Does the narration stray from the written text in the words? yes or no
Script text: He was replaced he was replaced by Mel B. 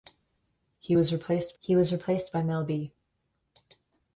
no